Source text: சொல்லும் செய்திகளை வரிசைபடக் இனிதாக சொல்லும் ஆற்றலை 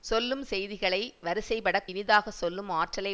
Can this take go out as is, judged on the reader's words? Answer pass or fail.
pass